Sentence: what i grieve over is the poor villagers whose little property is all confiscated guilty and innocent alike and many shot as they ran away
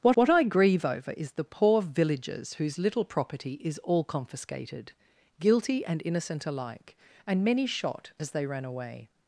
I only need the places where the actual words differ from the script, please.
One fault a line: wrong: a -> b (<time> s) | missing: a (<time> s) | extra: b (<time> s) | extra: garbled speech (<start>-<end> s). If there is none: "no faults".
extra: what (0.1 s)